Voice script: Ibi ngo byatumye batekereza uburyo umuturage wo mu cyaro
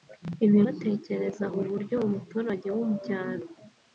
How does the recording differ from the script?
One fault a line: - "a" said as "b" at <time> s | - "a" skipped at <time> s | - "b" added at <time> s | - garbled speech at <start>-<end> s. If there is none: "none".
- "ngo byatumye" skipped at 0.6 s